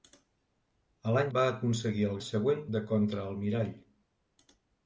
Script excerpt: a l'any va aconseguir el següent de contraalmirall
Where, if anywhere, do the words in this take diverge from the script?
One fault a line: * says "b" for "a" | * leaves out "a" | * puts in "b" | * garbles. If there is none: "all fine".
all fine